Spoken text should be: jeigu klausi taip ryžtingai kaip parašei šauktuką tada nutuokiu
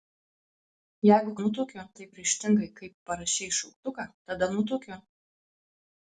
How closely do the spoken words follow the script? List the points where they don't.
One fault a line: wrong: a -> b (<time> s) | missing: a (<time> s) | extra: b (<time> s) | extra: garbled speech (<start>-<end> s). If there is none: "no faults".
wrong: klausi -> nutuokiu (1.4 s)